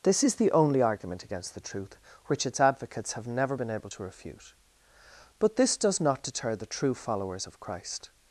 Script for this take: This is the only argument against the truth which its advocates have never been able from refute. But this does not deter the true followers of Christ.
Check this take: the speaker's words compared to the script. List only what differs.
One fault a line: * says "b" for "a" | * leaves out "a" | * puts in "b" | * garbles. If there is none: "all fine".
* says "to" for "from"